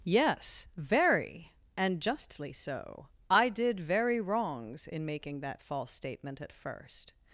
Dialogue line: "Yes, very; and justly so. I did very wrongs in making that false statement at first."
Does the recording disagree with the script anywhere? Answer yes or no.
no